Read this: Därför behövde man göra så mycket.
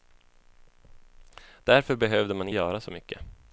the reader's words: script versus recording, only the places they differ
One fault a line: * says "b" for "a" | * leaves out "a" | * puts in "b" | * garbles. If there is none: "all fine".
all fine